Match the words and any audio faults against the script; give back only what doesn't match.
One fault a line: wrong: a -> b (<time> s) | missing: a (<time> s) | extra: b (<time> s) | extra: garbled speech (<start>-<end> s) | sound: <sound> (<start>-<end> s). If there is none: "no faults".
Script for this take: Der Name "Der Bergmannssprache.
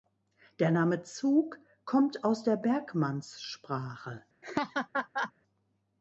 extra: Zug kommt aus (1.0 s)
sound: laugh (4.4-5.3 s)